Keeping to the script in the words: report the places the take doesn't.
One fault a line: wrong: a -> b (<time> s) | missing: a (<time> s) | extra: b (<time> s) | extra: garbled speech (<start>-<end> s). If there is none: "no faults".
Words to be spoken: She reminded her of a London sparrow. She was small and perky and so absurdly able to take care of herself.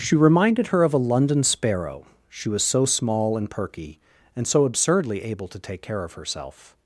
extra: so (2.6 s)